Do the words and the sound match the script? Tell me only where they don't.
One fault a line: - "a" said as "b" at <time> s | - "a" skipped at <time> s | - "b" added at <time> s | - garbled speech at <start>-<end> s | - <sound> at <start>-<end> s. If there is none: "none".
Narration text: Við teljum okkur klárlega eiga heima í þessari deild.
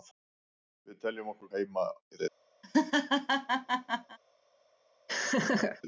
- "klárlega eiga" skipped at 1.5 s
- "þessari" skipped at 2.2 s
- laugh at 2.6-4.2 s
- laugh at 5.1-5.8 s